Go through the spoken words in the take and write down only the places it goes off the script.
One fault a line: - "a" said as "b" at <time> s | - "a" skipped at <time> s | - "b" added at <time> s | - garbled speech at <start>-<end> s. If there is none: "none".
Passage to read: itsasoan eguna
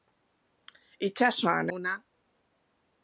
none